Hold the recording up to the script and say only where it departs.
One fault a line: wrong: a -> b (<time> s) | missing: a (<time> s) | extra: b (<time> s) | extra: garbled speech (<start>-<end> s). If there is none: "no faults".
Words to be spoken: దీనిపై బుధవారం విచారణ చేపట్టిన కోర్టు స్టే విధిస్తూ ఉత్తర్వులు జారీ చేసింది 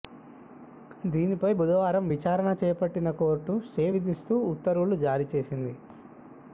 no faults